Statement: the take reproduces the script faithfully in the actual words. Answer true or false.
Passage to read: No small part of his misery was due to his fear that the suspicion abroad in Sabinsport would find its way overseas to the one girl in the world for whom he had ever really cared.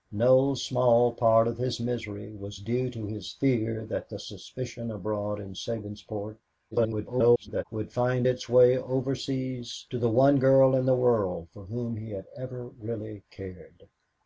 false